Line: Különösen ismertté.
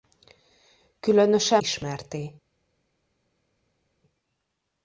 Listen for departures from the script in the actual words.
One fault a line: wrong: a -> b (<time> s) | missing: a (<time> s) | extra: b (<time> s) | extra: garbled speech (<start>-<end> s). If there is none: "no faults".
no faults